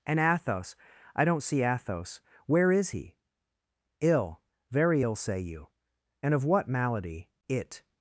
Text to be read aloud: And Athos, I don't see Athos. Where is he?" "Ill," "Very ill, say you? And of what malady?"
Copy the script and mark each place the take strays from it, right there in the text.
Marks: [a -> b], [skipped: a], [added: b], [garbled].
And Athos, I don't see Athos. Where is he?" "Ill," "Very ill, say you? And of what malady?" [added: It]